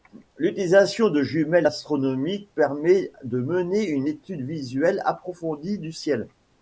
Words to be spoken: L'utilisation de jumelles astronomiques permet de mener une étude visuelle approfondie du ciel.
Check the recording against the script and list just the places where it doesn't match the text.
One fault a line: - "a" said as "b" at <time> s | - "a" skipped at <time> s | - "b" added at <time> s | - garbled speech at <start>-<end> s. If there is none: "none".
none